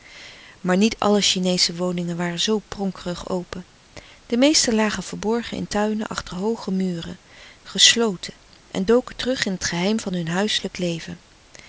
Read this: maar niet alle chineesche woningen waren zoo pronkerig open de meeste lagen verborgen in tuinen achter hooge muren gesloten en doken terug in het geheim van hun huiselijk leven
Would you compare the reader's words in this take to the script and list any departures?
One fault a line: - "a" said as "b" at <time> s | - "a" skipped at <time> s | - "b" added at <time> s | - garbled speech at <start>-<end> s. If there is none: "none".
none